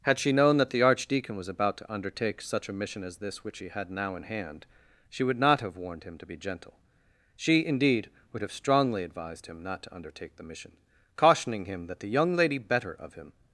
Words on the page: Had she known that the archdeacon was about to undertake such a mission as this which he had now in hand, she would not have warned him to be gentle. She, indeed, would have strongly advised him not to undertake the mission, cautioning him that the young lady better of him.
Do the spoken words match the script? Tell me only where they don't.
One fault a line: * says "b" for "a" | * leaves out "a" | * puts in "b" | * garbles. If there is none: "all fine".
all fine